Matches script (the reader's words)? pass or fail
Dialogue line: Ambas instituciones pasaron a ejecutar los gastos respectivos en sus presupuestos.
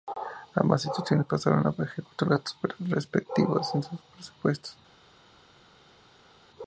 fail